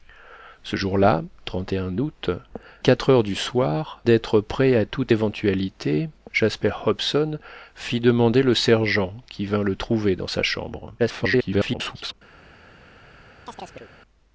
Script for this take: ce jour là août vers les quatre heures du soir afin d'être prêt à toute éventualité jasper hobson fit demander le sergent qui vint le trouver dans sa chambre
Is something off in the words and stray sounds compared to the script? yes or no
yes